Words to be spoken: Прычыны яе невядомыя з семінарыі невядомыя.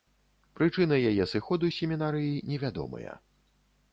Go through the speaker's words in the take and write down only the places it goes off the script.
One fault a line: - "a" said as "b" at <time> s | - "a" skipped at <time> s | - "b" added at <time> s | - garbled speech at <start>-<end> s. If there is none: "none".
- "невядомыя" said as "сыходу" at 1.3 s